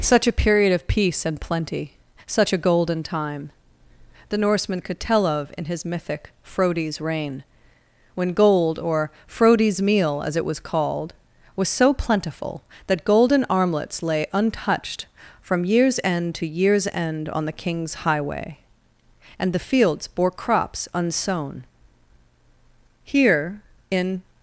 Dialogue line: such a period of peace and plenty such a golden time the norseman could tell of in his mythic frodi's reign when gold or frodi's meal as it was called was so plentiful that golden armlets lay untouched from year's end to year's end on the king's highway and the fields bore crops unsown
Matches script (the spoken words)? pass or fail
fail